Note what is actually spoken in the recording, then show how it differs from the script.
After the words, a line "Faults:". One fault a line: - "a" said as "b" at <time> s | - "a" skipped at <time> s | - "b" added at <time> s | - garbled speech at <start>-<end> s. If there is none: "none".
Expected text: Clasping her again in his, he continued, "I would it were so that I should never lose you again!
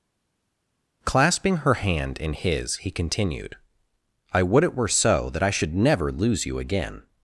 Clasping her hand in his, he continued, "I would it were so that I should never lose you again!
Faults:
- "again" said as "hand" at 1.8 s